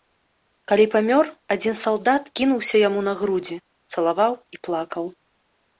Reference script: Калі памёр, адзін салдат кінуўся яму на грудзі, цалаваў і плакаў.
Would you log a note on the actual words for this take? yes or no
no